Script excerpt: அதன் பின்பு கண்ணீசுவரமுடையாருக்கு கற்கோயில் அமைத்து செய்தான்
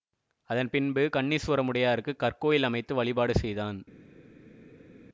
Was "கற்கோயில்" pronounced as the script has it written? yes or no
yes